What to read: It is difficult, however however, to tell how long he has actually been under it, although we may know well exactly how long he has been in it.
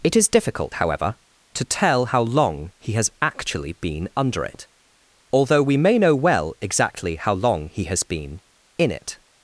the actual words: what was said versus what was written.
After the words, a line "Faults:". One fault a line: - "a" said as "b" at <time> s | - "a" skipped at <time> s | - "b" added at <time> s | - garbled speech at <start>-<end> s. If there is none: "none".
It is difficult, however, to tell how long he has actually been under it, although we may know well exactly how long he has been in it.
Faults:
- "however" skipped at 1.2 s